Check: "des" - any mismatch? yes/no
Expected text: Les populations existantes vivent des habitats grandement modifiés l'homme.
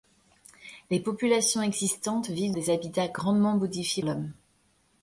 no